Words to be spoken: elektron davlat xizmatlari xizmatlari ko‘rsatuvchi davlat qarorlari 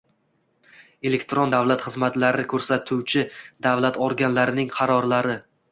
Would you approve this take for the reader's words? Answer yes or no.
no